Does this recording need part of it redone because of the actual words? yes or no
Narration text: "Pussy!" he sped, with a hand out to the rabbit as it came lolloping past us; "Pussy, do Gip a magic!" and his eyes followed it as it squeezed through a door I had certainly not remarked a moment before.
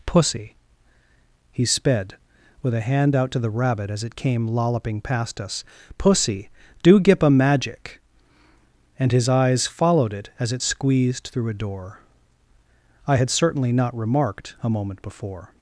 no